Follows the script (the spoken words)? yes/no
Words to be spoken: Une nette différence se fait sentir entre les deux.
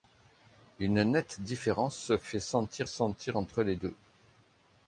no